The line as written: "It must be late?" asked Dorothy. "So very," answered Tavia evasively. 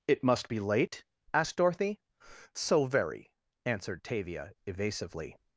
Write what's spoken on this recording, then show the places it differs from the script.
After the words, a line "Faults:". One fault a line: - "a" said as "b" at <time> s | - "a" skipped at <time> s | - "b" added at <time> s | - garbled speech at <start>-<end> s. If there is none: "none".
"It must be late?" asked Dorothy. "So very," answered Tavia evasively.
Faults:
none